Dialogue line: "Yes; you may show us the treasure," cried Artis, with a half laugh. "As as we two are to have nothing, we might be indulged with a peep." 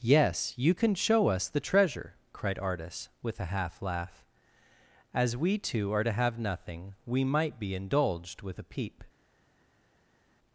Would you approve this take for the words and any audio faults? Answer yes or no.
no